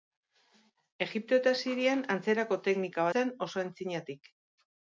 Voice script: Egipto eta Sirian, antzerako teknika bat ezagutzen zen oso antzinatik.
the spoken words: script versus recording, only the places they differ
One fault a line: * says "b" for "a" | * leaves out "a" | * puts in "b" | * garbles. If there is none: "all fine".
* leaves out "bat ezagutzen"